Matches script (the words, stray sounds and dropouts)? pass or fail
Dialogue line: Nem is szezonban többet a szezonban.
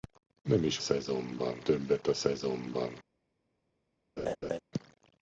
fail